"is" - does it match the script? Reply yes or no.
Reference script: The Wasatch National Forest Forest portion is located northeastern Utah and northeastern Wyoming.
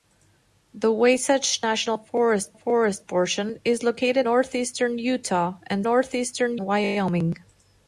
yes